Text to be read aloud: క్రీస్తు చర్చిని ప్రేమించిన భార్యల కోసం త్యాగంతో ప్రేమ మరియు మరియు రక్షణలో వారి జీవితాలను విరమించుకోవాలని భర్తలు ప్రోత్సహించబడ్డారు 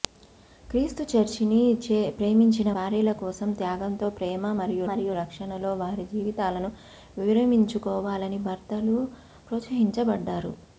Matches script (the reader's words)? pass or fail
pass